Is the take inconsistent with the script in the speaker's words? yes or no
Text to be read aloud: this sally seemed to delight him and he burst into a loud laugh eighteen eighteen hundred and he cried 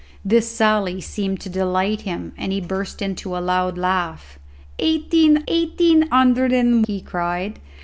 no